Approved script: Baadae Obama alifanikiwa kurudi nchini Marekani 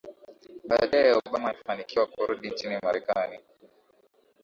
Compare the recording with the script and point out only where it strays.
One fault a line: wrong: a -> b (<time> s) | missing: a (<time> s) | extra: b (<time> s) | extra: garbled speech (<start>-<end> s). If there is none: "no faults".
no faults